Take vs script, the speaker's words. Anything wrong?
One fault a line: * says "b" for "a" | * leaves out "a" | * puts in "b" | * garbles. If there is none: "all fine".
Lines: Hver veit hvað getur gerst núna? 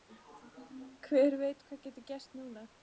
all fine